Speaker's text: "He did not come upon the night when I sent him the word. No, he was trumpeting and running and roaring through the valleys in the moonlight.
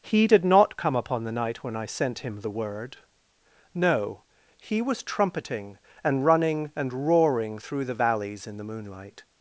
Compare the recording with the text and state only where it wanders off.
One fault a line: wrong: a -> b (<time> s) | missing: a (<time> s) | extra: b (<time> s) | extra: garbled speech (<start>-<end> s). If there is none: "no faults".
no faults